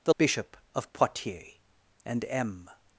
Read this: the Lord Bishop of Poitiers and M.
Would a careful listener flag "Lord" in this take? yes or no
yes